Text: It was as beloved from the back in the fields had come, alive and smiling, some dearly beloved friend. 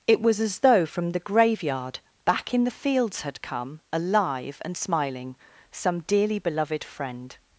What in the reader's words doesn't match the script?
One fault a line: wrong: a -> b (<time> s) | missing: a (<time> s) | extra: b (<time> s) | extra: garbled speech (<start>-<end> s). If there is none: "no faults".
wrong: beloved -> though (0.6 s)
extra: graveyard (1.2 s)